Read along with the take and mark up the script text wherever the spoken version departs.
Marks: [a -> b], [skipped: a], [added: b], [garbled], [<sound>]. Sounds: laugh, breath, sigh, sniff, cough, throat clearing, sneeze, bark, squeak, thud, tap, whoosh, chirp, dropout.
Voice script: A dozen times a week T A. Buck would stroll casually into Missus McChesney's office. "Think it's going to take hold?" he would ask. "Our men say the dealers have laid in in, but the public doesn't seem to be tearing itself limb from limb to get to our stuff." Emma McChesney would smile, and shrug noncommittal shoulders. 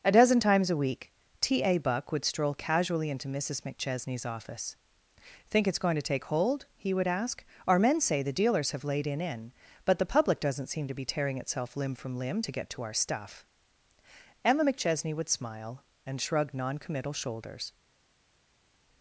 A dozen times a week T A. Buck would stroll casually into Missus McChesney's office. "Think it's going to take hold?" he would ask. "Our men say the dealers have laid in in, but the public doesn't seem to be tearing itself limb from limb to get to our stuff." Emma McChesney would smile, and shrug noncommittal shoulders.